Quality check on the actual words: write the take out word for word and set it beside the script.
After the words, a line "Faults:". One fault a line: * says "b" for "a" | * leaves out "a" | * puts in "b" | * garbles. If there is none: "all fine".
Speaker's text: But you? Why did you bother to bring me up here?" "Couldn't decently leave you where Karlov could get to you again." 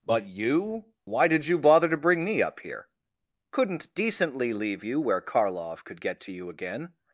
But you? Why did you bother to bring me up here?" "Couldn't decently leave you where Karlov could get to you again."
Faults:
all fine